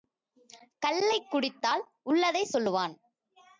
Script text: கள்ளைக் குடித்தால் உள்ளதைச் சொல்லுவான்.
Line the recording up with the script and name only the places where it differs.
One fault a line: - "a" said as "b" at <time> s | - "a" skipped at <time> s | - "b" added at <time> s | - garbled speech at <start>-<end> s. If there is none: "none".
none